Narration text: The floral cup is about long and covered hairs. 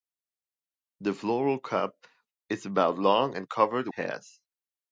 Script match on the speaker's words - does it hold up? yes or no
yes